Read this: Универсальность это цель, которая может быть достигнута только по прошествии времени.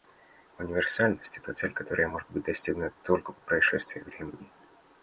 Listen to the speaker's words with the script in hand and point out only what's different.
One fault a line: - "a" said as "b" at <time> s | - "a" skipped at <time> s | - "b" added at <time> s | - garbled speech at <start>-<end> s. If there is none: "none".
none